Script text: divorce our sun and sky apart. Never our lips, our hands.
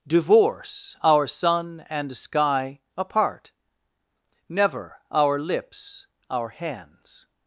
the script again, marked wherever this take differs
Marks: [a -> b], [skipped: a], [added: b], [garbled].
divorce our sun and sky apart. Never our lips, our hands.